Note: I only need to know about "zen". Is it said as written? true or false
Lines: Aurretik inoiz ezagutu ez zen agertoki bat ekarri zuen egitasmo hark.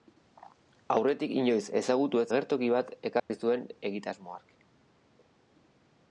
false